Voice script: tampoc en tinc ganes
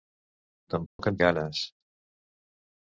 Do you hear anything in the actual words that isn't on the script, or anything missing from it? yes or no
yes